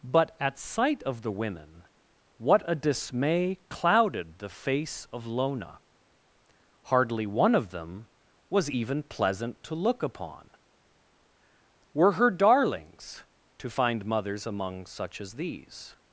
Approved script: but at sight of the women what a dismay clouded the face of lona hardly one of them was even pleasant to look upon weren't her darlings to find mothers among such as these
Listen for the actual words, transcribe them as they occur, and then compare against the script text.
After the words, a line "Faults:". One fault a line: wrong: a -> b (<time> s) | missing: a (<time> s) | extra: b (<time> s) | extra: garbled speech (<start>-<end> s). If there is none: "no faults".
but at sight of the women what a dismay clouded the face of lona hardly one of them was even pleasant to look upon were her darlings to find mothers among such as these
Faults:
wrong: weren't -> were (11.9 s)